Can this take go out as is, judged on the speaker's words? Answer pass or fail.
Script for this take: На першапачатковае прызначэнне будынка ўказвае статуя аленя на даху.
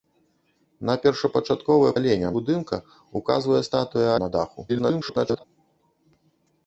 fail